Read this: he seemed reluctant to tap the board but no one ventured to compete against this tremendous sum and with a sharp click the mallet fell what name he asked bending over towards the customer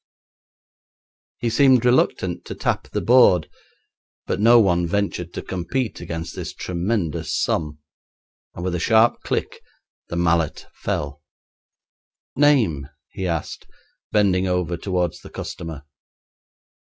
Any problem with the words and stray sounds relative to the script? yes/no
yes